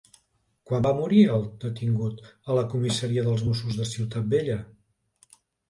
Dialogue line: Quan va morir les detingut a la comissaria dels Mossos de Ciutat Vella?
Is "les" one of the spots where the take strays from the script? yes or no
yes